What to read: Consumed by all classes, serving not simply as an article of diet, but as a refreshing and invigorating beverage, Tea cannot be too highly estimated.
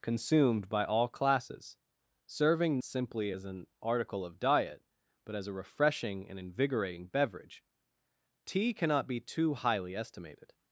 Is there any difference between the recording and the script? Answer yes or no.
yes